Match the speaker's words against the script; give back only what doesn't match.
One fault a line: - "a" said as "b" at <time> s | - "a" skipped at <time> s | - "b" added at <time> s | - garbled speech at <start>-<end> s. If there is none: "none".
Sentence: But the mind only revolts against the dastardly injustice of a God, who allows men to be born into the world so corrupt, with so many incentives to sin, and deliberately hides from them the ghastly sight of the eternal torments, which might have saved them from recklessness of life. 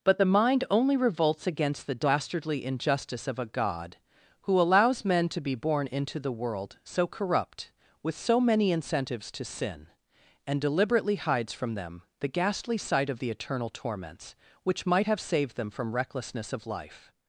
none